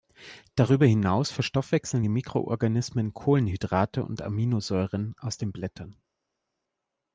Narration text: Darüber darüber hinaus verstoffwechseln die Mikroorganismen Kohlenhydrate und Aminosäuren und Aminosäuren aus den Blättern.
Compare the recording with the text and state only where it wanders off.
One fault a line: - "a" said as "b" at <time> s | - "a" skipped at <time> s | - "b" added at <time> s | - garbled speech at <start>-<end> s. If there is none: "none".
- "darüber" skipped at 0.9 s
- "und Aminosäuren" skipped at 5.1 s